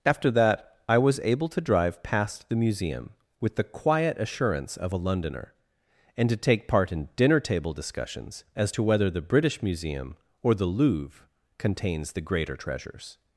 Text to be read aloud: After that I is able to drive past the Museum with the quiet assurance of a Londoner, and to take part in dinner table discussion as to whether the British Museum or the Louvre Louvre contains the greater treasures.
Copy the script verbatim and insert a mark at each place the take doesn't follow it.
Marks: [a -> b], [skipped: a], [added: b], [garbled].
After that I [is -> was] able to drive past the Museum with the quiet assurance of a Londoner, and to take part in dinner table [discussion -> discussions] as to whether the British Museum or the Louvre [skipped: Louvre] contains the greater treasures.